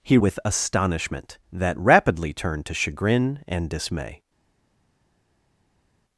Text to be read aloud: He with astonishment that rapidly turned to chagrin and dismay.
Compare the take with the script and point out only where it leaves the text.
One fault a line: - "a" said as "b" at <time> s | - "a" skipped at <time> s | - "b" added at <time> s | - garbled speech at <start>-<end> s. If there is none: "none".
none